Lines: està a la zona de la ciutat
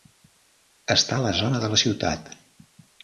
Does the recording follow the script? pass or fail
pass